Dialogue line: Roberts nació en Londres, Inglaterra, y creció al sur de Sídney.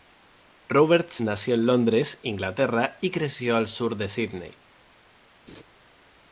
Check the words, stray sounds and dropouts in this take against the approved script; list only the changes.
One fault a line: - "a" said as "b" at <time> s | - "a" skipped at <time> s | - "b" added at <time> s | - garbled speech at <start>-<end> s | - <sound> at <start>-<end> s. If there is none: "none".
- laugh at 5.5-5.6 s